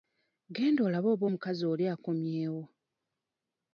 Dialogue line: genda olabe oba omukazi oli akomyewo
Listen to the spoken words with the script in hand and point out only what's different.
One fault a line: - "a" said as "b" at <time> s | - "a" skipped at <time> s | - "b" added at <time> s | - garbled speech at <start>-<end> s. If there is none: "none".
none